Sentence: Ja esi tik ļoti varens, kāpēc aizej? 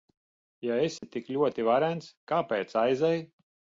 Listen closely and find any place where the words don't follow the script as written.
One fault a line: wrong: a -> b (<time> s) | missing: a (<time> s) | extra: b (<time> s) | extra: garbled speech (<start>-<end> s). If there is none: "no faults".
no faults